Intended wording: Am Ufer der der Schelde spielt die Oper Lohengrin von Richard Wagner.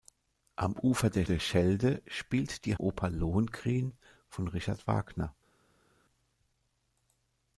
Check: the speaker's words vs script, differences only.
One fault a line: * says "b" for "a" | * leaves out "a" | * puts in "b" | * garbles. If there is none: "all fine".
all fine